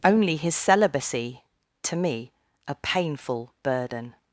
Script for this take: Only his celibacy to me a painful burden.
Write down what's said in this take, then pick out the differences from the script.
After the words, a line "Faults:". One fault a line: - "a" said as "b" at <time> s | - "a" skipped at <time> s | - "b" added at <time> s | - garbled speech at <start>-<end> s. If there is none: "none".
Only his celibacy to me a painful burden.
Faults:
none